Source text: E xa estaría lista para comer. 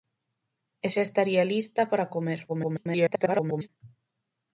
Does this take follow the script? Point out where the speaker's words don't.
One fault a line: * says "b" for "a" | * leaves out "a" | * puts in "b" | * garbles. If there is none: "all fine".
* garbles